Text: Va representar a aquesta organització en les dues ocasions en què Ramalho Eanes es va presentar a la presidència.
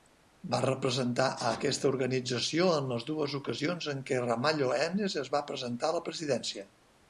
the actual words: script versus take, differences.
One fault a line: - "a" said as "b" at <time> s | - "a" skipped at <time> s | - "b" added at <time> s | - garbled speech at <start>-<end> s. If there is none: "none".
none